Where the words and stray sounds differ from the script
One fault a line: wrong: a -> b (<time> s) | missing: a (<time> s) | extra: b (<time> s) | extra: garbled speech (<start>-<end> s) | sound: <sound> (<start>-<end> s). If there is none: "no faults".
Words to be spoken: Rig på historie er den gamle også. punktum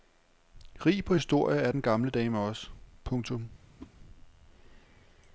extra: dame (2.1 s)
sound: whoosh (3.8-3.9 s)